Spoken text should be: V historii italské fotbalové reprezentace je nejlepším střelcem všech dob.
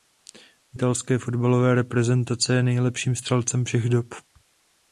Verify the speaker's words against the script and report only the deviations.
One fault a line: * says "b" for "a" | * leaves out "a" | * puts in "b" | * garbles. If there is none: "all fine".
* leaves out "historii"